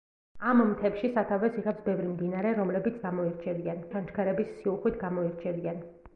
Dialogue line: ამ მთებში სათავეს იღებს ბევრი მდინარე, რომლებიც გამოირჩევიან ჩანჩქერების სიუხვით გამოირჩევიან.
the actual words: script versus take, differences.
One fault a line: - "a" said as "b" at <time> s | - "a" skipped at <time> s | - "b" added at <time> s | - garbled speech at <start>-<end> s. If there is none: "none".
none